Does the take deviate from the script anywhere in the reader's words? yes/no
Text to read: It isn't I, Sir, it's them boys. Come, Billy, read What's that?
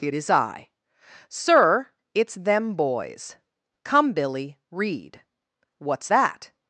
yes